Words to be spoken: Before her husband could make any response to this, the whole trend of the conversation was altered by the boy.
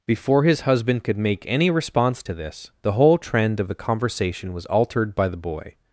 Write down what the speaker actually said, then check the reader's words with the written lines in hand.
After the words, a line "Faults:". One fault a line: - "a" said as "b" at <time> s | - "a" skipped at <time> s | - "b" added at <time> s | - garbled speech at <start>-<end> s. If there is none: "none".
Before his husband could make any response to this, the whole trend of the conversation was altered by the boy.
Faults:
- "her" said as "his" at 0.4 s